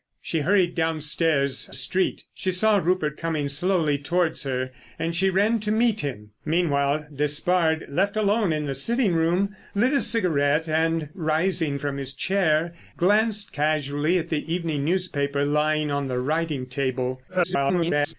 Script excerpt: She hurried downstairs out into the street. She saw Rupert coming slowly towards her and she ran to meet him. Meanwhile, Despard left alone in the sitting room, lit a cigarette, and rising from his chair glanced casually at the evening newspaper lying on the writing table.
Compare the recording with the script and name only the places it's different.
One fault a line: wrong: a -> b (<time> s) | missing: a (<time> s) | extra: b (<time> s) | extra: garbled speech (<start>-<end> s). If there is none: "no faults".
missing: out into the (1.7 s)
extra: garbled speech (17.3-18.1 s)